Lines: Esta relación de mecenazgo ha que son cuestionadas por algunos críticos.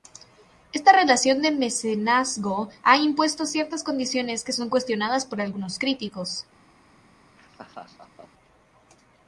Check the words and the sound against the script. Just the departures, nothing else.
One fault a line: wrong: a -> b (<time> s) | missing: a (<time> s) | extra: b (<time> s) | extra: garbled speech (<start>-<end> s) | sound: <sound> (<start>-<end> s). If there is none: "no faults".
extra: impuesto ciertas condiciones (3.0 s)
sound: laugh (7.4-8.3 s)